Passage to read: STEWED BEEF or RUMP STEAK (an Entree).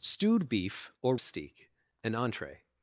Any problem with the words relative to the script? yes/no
yes